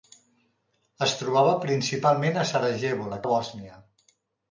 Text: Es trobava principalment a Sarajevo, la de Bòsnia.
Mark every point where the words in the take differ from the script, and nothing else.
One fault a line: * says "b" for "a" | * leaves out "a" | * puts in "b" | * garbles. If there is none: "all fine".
all fine